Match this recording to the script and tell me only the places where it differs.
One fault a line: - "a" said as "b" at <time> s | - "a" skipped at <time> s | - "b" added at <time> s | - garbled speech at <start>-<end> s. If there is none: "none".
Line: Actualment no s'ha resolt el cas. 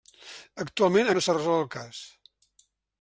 none